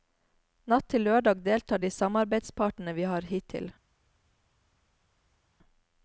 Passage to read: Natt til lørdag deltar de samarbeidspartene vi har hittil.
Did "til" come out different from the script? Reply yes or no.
no